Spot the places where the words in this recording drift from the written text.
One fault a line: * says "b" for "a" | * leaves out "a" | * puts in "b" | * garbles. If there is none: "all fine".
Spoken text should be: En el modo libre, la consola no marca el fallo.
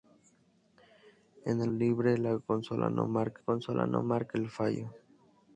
* leaves out "modo"
* puts in "consola no marca"